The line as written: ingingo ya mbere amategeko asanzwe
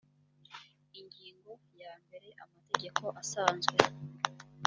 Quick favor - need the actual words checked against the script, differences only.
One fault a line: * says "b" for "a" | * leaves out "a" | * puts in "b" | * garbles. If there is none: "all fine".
all fine